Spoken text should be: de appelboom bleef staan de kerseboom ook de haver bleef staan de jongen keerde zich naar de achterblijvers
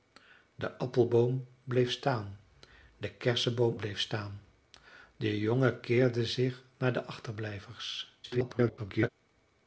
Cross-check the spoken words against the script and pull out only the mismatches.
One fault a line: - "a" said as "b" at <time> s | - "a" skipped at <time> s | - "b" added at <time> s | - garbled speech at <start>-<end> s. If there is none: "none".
- "ook de haver" skipped at 3.8 s
- garbled speech at 8.2-9.1 s